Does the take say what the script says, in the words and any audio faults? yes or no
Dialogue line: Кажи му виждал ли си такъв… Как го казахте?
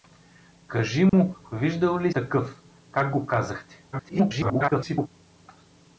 no